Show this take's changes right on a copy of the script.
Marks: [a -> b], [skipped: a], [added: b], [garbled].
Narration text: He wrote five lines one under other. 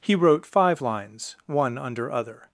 He wrote five lines one under other.